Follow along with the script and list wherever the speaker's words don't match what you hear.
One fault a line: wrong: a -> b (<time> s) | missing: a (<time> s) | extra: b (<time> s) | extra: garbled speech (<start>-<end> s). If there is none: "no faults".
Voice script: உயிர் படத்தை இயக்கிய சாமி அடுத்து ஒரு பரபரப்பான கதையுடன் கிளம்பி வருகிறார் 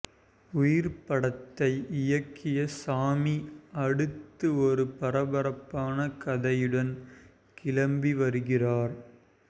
no faults